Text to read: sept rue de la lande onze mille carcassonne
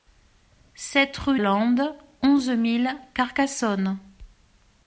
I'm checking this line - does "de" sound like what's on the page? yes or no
no